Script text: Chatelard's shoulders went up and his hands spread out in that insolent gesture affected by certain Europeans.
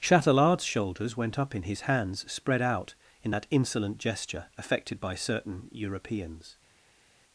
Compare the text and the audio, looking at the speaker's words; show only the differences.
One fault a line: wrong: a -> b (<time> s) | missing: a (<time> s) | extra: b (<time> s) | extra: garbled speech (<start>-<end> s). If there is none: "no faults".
wrong: and -> in (1.5 s)